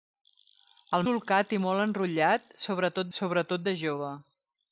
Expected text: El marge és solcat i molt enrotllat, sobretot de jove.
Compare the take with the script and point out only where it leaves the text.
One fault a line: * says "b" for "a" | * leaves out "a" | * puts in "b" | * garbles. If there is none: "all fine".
* leaves out "marge és"
* puts in "sobretot"